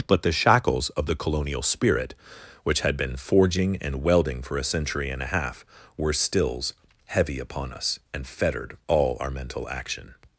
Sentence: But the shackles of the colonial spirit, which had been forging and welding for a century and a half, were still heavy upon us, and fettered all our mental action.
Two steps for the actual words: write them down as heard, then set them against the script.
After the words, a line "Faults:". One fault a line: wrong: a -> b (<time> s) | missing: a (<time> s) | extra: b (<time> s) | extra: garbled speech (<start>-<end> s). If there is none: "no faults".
But the shackles of the colonial spirit, which had been forging and welding for a century and a half, were stills heavy upon us, and fettered all our mental action.
Faults:
wrong: still -> stills (6.1 s)